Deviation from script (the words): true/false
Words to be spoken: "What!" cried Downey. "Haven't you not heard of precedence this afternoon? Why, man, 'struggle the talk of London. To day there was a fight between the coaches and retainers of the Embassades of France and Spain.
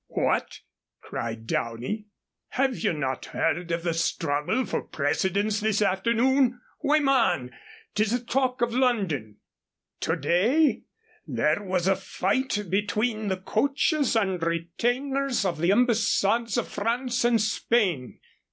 true